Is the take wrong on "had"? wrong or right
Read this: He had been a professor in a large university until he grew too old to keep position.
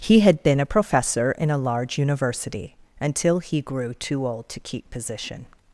right